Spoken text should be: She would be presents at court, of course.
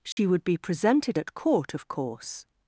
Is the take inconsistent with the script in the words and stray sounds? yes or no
yes